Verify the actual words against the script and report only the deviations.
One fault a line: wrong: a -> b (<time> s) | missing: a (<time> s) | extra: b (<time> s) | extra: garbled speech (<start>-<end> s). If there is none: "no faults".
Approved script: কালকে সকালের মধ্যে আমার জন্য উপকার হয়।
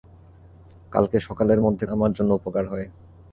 no faults